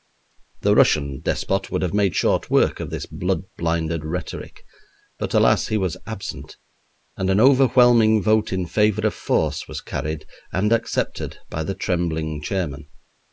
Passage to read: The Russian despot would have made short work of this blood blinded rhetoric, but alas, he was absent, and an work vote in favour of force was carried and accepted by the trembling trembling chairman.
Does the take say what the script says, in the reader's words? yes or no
no